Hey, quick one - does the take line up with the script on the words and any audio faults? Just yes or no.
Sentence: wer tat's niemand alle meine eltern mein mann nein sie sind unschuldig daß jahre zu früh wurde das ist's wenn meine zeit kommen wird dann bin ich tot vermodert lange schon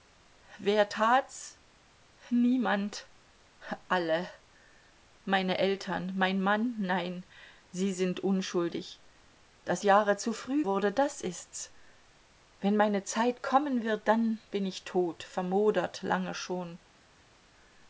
yes